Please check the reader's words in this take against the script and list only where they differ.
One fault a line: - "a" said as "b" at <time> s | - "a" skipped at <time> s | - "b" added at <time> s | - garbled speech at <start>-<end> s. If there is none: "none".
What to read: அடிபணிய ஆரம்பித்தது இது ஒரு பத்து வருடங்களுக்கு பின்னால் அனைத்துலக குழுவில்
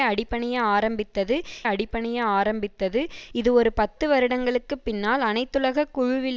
- "அடிபணிய ஆரம்பித்தது" added at 1.6 s